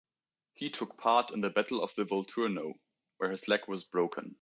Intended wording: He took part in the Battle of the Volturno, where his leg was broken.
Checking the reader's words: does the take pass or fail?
pass